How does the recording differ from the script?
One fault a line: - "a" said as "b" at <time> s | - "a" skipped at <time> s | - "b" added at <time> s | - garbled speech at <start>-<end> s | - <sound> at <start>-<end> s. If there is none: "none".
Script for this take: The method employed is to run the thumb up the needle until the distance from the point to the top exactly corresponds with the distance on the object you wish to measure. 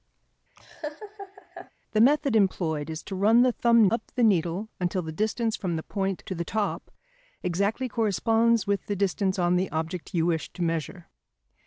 - laugh at 0.6-1.7 s